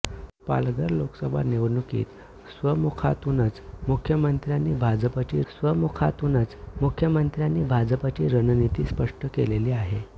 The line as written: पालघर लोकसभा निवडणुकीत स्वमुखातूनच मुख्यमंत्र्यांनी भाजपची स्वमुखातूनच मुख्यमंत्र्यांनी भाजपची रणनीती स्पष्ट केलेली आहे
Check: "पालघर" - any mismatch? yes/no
no